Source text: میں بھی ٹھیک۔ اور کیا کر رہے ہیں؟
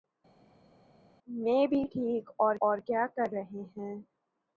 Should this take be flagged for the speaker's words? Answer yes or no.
yes